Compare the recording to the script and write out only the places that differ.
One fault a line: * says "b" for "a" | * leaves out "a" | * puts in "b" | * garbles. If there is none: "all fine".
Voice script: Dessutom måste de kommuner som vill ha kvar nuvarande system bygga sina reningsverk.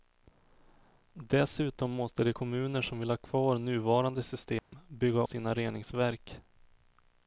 all fine